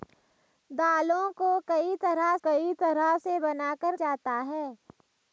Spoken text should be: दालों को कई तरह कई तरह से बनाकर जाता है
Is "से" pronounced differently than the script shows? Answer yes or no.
no